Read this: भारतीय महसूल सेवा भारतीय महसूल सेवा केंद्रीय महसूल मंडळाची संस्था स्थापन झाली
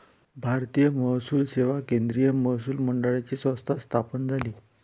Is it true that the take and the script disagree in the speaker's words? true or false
true